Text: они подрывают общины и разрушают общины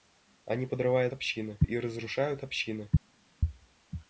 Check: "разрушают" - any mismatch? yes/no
no